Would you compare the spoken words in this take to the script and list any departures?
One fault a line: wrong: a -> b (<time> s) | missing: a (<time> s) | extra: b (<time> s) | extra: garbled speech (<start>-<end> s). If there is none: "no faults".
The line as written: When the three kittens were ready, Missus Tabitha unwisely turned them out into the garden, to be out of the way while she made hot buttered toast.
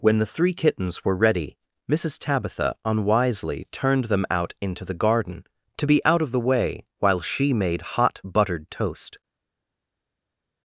no faults